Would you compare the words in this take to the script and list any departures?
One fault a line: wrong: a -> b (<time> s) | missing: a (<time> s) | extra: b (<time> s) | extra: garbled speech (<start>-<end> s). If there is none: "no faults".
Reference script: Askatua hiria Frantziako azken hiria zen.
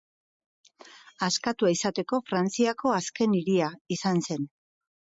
wrong: hiria -> izateko (1.8 s)
extra: izan (4.0 s)